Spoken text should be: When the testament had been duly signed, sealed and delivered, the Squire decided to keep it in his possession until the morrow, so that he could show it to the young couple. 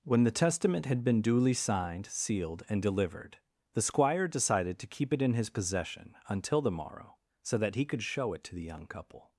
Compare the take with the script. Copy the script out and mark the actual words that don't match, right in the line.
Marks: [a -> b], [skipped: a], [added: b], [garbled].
When the testament had been duly signed, sealed and delivered, the Squire decided to keep it in his possession until the morrow, so that he could show it to the young couple.